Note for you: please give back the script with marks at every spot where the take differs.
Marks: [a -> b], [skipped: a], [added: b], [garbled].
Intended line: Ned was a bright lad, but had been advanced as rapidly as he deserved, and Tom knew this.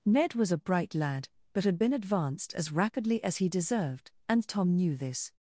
Ned was a bright lad, but had been advanced as rapidly as he deserved, and Tom knew this.